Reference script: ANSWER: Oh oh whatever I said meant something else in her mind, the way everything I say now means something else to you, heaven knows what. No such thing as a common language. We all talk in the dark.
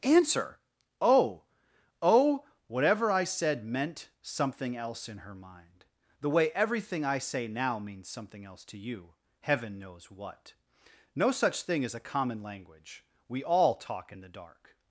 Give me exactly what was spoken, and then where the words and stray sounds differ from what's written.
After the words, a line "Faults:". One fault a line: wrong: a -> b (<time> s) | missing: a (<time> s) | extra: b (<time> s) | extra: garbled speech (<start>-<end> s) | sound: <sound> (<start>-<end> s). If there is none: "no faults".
ANSWER: Oh oh whatever I said meant something else in her mind, the way everything I say now means something else to you, heaven knows what. No such thing as a common language. We all talk in the dark.
Faults:
no faults